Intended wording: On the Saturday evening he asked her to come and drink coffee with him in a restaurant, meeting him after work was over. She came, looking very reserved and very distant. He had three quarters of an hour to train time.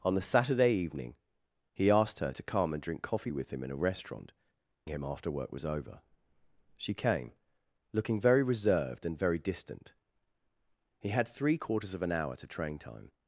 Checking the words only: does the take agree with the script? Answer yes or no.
no